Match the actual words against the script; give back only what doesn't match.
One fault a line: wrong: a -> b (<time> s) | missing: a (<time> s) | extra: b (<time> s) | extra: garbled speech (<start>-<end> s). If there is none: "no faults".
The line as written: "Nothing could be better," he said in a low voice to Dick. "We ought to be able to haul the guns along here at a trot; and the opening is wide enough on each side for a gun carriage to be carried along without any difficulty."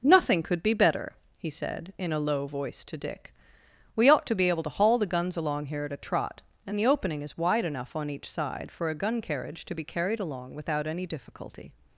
no faults